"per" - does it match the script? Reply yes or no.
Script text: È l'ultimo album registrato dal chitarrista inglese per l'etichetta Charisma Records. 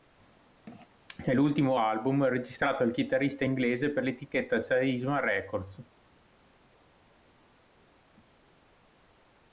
yes